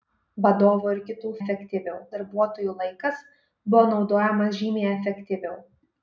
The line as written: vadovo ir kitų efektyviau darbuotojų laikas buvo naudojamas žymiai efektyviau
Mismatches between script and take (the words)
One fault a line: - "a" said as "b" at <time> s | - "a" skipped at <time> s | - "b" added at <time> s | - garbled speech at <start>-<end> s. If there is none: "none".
none